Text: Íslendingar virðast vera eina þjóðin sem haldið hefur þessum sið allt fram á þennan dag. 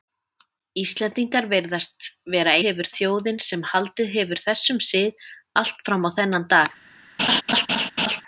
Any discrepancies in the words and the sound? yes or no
yes